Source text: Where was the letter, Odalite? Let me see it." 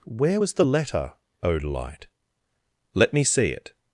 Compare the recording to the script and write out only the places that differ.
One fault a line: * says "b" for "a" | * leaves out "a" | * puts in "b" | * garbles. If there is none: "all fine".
all fine